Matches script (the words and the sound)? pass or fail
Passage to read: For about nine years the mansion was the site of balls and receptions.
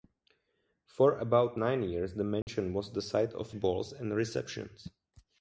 fail